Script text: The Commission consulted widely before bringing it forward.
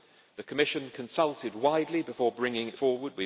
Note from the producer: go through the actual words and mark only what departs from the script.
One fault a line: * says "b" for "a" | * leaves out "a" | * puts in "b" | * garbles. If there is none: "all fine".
all fine